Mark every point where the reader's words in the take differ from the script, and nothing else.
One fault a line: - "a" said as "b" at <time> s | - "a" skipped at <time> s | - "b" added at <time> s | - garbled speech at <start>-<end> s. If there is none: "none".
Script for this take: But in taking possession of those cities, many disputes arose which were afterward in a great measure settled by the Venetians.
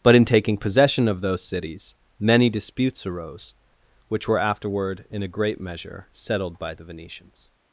none